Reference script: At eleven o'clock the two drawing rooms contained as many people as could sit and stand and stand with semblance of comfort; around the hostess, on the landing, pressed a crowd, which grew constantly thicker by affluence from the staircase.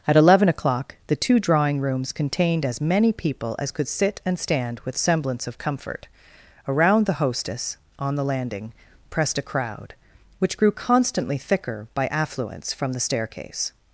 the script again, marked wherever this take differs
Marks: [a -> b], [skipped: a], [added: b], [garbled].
At eleven o'clock the two drawing rooms contained as many people as could sit and stand [skipped: and stand] with semblance of comfort; around the hostess, on the landing, pressed a crowd, which grew constantly thicker by affluence from the staircase.